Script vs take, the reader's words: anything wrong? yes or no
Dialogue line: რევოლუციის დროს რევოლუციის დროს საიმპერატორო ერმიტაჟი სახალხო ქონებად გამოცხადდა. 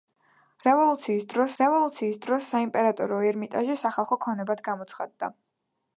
no